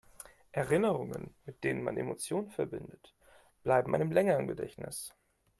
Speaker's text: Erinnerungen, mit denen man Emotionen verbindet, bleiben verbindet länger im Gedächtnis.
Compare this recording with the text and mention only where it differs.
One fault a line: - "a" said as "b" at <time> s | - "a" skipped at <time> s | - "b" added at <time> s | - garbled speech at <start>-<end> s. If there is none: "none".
- "verbindet" said as "einem" at 3.9 s